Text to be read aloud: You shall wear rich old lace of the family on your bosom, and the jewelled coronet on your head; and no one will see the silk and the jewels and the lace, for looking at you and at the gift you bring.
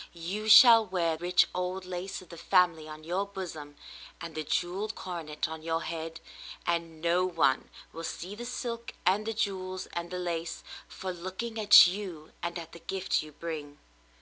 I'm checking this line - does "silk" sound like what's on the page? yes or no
yes